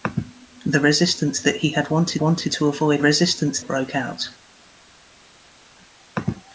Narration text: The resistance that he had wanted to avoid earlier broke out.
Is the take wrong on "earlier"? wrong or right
wrong